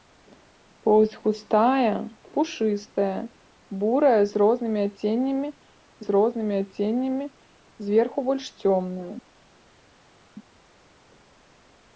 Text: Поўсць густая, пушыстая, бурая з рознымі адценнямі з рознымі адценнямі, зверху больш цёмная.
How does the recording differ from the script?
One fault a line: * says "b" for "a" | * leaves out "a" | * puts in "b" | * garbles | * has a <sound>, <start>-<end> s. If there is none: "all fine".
all fine